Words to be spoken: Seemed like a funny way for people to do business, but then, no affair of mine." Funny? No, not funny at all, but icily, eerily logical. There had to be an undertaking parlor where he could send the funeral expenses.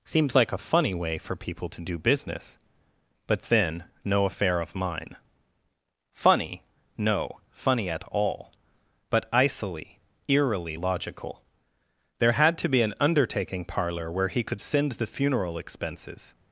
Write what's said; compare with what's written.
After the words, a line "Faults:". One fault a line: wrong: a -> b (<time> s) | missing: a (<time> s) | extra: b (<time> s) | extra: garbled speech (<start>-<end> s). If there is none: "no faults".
Seemed like a funny way for people to do business, but then, no affair of mine." Funny? No, funny at all, but icily, eerily logical. There had to be an undertaking parlor where he could send the funeral expenses.
Faults:
missing: not (7.4 s)